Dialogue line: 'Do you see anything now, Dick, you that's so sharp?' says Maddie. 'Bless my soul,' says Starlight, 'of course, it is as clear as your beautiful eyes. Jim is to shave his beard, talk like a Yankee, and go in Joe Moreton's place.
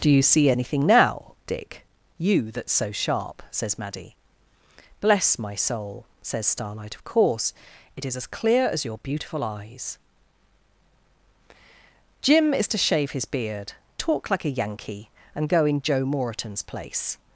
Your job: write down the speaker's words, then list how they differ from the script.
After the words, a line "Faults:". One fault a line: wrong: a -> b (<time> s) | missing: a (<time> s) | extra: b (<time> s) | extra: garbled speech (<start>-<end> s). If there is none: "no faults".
'Do you see anything now, Dick, you that's so sharp?' says Maddie. 'Bless my soul,' says Starlight, 'of course, it is as clear as your beautiful eyes. Jim is to shave his beard, talk like a Yankee, and go in Joe Moreton's place.
Faults:
no faults